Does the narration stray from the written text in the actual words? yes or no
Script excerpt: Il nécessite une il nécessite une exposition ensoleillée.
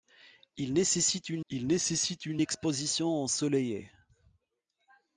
no